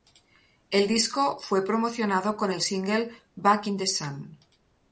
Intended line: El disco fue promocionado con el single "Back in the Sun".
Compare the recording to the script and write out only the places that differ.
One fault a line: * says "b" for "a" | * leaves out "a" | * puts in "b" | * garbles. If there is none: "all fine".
all fine